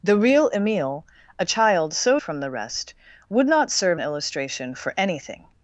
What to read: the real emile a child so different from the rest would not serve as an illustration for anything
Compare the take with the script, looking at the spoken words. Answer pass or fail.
fail